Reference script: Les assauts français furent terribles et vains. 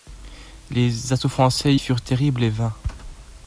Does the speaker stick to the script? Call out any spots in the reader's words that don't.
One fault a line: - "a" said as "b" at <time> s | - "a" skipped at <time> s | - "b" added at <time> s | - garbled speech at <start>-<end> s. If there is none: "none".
none